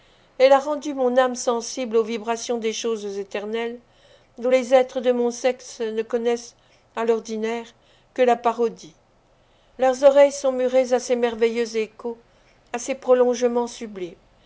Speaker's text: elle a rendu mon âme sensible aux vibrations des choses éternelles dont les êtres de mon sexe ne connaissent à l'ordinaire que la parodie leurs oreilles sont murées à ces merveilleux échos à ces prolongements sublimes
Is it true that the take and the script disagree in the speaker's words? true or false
false